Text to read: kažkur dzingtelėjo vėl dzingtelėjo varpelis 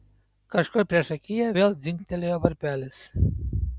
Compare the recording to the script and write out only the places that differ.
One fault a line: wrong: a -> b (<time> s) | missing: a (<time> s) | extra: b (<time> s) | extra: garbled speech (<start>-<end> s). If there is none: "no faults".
wrong: dzingtelėjo -> priešakyje (0.9 s)